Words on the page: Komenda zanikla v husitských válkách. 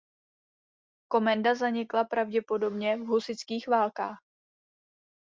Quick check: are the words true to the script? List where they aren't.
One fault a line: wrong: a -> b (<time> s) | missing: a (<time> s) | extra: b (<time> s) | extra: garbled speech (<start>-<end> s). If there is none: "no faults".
extra: pravděpodobně (2.0 s)